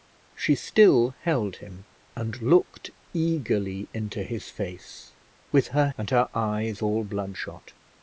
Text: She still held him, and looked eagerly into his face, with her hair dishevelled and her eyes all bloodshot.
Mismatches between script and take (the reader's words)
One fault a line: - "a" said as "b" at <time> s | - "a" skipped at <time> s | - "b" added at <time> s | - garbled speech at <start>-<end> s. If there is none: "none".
- "hair dishevelled" skipped at 5.9 s